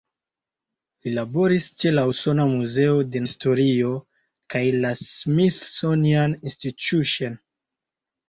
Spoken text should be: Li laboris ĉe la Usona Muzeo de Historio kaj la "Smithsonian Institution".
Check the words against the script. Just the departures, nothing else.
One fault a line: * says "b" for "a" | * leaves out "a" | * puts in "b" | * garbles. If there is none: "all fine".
all fine